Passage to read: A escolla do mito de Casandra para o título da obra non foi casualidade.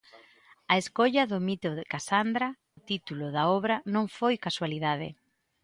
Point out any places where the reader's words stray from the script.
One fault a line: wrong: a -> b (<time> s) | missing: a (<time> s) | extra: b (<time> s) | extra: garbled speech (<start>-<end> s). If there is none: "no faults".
missing: para (2.5 s)